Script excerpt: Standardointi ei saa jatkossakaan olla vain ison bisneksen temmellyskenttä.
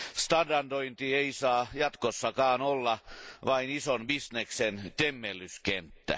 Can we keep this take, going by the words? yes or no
yes